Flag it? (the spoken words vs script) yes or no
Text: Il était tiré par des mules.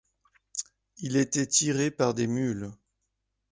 no